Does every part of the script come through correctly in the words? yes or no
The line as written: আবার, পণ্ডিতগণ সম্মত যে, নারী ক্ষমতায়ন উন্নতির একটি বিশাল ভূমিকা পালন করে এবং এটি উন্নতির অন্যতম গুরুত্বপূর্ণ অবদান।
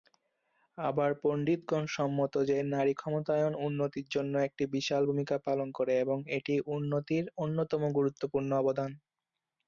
no